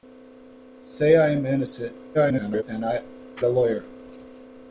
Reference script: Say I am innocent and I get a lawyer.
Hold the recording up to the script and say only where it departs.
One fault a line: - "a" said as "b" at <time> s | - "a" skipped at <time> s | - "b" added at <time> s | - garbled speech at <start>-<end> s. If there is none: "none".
- garbled speech at 2.1-2.6 s
- "get" skipped at 3.0 s